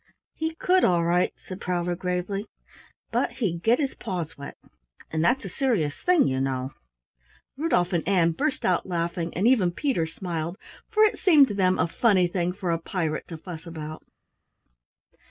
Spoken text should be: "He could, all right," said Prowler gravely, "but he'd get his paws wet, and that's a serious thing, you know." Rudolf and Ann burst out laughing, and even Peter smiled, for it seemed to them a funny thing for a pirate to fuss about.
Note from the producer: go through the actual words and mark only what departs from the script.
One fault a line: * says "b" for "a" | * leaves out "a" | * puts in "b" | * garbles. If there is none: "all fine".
all fine